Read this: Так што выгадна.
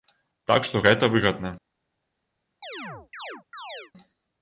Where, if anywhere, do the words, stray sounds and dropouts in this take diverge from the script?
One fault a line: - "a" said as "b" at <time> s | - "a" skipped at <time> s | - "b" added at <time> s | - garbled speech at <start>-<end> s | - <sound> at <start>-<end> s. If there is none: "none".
- "гэта" added at 0.8 s
- chirp at 2.6-3.9 s